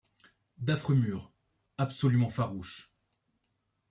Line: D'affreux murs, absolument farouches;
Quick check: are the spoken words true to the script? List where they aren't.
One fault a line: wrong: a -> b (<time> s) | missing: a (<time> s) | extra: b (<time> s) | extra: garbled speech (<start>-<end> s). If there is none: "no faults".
no faults